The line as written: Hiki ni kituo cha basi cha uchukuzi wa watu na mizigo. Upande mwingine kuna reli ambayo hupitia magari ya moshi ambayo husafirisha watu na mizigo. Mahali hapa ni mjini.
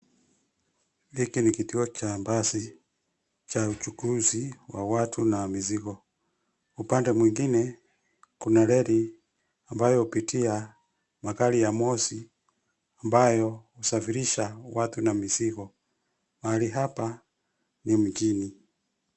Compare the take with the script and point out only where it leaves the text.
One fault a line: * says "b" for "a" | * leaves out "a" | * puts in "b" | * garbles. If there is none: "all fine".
all fine